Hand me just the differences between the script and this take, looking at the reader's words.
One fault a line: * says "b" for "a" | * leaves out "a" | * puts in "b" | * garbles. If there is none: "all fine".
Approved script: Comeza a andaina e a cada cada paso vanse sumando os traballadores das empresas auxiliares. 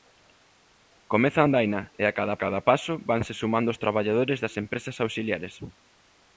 all fine